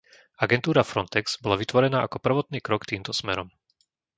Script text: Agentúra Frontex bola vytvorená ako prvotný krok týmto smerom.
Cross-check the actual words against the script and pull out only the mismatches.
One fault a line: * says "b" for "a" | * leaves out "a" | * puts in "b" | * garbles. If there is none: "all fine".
all fine